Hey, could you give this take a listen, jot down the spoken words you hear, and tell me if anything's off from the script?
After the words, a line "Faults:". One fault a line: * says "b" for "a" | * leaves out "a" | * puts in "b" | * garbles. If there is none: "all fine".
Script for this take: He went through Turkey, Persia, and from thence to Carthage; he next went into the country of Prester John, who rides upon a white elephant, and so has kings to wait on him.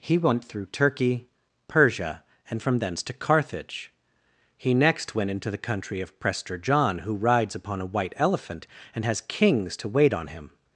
He went through Turkey, Persia, and from thence to Carthage; he next went into the country of Prester John, who rides upon a white elephant, and has kings to wait on him.
Faults:
* leaves out "so"